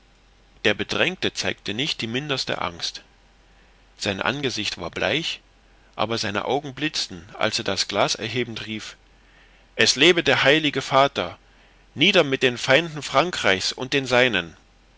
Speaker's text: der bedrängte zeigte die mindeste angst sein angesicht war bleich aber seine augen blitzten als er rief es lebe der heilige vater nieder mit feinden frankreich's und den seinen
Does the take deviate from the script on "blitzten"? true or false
false